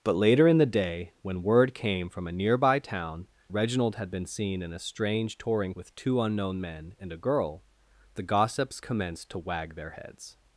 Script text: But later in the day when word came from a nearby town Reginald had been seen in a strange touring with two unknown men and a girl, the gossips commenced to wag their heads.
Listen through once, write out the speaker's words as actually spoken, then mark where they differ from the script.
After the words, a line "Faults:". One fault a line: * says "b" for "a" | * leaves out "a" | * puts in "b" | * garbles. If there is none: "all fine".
But later in the day when word came from a nearby town Reginald had been seen in a strange touring with two unknown men and a girl, the gossips commenced to wag their heads.
Faults:
all fine